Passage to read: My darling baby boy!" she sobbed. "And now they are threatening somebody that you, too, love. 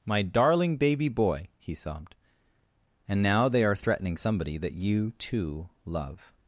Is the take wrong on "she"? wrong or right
wrong